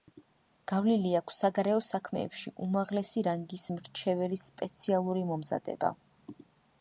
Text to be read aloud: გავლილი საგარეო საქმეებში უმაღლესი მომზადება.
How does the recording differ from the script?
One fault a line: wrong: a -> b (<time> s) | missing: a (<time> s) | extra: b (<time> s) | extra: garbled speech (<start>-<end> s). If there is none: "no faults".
extra: აქვს (1.2 s)
extra: რანგის მრჩეველის სპეციალური (3.3 s)